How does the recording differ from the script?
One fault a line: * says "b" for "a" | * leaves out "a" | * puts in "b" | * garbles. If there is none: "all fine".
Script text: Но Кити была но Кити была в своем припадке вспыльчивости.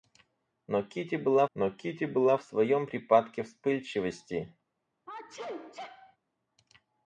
all fine